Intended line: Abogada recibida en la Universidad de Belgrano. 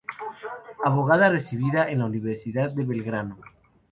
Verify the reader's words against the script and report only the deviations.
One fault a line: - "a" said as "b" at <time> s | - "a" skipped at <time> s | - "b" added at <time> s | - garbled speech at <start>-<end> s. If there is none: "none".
none